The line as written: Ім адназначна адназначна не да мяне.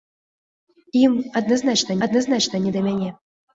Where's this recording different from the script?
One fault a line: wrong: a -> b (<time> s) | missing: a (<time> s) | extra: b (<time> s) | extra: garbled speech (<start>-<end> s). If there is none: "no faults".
no faults